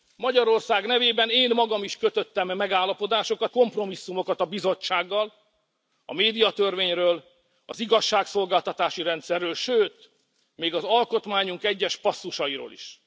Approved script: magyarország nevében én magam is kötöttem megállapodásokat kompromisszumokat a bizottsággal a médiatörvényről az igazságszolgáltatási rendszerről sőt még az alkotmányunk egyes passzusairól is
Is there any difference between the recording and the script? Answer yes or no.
no